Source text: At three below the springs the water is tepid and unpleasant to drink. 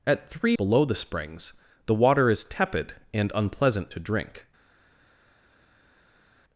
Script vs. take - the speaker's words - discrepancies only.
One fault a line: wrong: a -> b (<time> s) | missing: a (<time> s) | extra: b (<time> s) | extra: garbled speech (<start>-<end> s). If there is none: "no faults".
no faults